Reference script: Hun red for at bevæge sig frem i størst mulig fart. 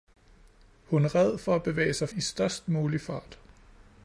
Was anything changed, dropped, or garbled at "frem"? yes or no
yes